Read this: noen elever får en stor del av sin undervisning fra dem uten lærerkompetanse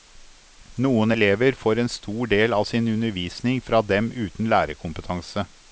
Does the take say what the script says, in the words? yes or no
yes